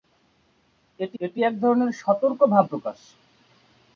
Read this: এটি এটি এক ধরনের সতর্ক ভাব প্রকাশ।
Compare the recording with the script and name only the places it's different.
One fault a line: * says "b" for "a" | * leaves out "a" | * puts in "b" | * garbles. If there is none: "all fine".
all fine